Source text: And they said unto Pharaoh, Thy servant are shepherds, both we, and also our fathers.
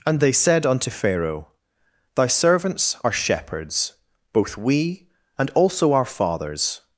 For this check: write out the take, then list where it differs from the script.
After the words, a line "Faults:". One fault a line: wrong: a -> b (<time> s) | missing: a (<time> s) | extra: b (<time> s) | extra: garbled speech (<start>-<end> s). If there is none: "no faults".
And they said unto Pharaoh, Thy servants are shepherds, both we, and also our fathers.
Faults:
wrong: servant -> servants (2.3 s)